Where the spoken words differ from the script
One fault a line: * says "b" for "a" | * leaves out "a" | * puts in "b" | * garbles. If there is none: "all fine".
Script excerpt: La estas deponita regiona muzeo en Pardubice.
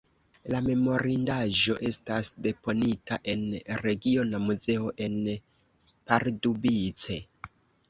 * puts in "memorindaĵo"
* puts in "en"